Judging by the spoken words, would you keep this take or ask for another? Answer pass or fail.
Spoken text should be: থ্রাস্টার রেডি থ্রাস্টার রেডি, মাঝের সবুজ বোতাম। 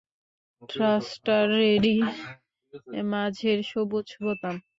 fail